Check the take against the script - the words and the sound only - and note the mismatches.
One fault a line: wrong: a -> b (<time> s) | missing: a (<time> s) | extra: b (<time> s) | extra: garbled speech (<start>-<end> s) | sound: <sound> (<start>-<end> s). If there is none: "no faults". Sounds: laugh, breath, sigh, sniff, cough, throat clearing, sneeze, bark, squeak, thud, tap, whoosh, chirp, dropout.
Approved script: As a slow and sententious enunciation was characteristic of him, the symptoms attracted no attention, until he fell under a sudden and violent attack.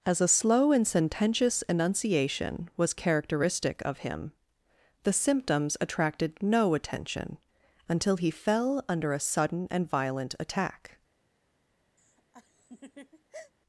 sound: laugh (12.0-13.5 s)